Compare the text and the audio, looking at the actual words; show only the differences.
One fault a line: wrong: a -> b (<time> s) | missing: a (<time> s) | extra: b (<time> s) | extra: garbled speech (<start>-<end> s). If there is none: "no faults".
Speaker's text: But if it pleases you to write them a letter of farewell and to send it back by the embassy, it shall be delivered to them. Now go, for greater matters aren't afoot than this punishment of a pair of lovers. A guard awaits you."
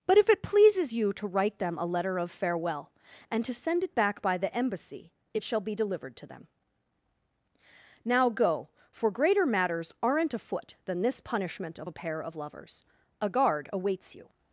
no faults